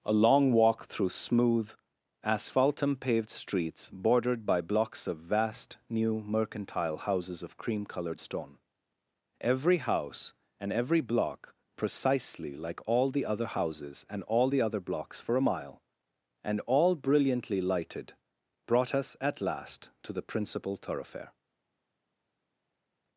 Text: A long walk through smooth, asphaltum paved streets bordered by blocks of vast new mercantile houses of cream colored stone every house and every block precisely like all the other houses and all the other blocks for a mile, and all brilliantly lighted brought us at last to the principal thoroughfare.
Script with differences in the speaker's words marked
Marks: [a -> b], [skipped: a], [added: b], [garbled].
A long walk through smooth, asphaltum paved streets bordered by blocks of vast new mercantile houses of cream colored stone every house and every block precisely like all the other houses and all the other blocks for a mile, and all brilliantly lighted brought us at last to the principal thoroughfare.